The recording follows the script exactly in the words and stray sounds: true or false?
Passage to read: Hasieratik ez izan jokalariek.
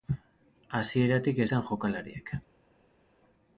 true